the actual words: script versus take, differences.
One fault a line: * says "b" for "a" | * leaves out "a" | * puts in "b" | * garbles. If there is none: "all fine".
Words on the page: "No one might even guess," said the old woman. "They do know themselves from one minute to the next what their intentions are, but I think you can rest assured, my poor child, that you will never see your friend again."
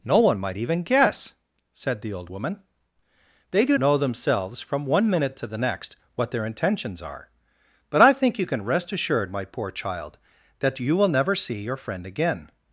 all fine